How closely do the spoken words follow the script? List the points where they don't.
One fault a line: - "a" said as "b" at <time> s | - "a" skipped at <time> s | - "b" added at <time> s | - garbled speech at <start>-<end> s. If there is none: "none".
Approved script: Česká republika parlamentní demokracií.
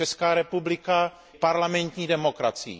none